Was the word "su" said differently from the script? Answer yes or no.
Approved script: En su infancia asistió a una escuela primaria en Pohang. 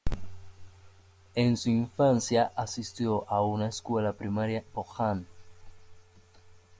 no